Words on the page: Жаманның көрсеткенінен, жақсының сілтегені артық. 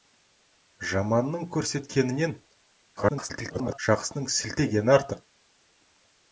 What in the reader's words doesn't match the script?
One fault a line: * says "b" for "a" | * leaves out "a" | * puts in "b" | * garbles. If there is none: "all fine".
* garbles